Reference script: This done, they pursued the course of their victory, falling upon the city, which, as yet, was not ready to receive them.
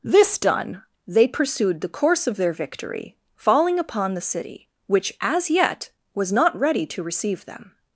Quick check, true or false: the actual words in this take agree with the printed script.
true